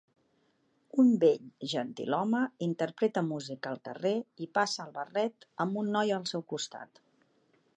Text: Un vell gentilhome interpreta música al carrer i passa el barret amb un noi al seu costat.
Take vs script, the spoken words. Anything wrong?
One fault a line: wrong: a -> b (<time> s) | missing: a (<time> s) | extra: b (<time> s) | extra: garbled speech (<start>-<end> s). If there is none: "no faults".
no faults